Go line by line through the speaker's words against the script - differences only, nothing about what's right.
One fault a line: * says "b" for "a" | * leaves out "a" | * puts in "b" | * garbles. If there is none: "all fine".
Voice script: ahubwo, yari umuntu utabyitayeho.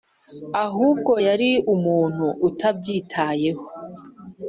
all fine